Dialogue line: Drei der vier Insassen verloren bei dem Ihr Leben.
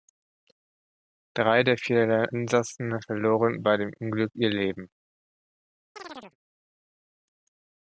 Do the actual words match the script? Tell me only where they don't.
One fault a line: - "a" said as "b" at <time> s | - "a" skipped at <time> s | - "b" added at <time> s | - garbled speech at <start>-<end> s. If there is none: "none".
- "Unglück" added at 4.0 s